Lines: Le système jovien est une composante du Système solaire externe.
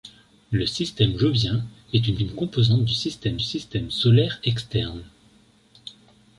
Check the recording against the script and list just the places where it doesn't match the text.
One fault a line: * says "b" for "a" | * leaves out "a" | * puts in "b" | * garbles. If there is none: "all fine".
* puts in "une"
* puts in "Système"